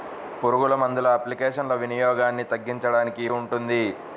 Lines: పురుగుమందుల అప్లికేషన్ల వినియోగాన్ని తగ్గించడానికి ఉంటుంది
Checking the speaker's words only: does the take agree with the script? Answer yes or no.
yes